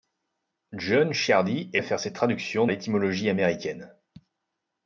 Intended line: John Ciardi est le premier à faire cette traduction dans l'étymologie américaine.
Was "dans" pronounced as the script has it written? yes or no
no